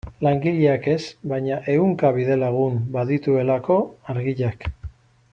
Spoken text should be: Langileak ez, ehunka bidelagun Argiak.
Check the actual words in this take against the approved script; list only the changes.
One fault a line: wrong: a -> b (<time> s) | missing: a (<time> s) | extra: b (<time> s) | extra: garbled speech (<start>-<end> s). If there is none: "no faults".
extra: baina (1.3 s)
extra: badituelako (2.9 s)